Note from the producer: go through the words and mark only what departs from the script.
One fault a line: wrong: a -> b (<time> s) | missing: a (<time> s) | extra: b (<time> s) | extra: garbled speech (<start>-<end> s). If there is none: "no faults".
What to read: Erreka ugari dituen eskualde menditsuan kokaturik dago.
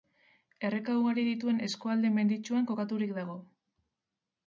no faults